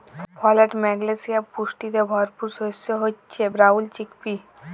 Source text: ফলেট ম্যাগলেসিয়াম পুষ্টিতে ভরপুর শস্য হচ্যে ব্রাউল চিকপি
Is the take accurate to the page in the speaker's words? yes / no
yes